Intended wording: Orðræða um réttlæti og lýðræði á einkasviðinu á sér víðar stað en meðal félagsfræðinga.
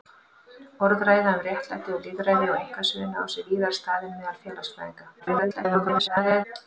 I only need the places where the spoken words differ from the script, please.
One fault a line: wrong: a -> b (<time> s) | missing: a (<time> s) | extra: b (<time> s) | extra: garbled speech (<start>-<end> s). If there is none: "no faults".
extra: garbled speech (5.2-6.4 s)